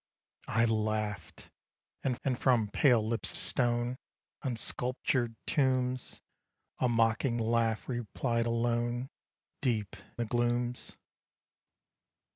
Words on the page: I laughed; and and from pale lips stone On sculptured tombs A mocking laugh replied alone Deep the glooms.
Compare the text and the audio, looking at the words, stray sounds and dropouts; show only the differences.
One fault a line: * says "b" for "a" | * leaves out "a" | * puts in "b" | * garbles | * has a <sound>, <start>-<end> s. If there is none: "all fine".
all fine